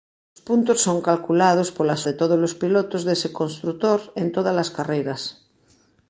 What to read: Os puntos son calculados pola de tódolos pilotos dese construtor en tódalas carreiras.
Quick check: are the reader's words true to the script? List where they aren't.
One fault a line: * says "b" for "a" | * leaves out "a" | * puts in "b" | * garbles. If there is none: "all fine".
all fine